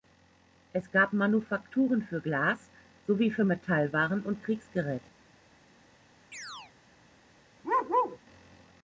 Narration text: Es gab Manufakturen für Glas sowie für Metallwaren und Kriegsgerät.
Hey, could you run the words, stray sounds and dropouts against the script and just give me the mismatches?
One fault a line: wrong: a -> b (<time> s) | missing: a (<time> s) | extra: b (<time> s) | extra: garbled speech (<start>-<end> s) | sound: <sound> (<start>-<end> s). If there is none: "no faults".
sound: chirp (6.3-6.7 s)
sound: bark (7.6-8.2 s)